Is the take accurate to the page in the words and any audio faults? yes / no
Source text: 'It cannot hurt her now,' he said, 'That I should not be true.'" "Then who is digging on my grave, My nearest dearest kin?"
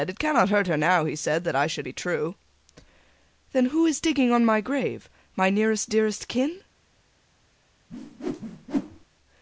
no